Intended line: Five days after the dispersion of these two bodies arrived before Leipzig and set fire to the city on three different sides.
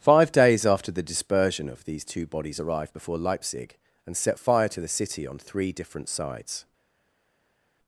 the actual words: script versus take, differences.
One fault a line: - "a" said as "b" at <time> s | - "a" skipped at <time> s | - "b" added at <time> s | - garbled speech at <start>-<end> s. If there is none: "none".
none